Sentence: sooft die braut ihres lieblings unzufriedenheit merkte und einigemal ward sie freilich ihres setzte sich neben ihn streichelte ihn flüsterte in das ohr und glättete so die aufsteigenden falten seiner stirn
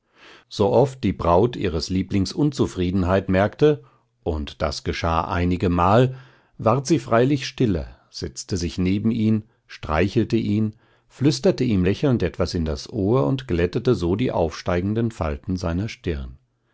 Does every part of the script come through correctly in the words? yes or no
no